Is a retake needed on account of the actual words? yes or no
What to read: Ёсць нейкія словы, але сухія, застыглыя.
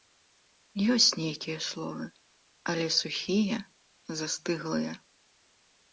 no